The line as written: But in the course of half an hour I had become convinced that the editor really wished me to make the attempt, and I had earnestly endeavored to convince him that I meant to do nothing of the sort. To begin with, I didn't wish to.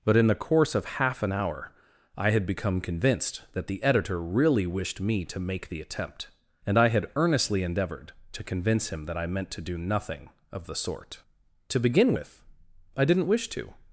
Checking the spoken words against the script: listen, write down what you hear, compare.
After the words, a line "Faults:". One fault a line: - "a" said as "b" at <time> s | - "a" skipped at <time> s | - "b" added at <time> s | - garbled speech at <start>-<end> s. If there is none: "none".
But in the course of half an hour I had become convinced that the editor really wished me to make the attempt, and I had earnestly endeavored to convince him that I meant to do nothing of the sort. To begin with, I didn't wish to.
Faults:
none